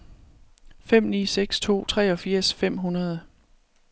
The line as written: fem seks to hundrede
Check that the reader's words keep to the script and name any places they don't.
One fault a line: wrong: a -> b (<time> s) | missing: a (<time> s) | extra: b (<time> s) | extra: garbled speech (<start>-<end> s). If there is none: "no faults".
extra: ni (1.0 s)
extra: treogfirs fem (1.9 s)